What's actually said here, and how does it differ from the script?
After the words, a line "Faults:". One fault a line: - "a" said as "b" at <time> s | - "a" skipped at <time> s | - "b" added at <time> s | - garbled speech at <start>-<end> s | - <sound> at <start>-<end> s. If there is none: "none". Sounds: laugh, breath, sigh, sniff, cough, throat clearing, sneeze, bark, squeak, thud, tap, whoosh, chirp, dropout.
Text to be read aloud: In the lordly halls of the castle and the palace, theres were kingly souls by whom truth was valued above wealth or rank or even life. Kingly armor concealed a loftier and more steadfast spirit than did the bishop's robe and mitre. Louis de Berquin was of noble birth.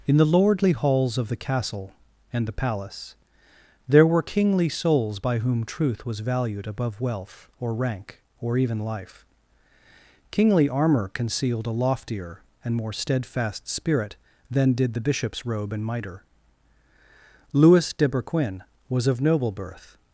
In the lordly halls of the castle and the palace, there were kingly souls by whom truth was valued above wealth or rank or even life. Kingly armor concealed a loftier and more steadfast spirit than did the bishop's robe and mitre. Louis de Berquin was of noble birth.
Faults:
- "theres" said as "there" at 3.9 s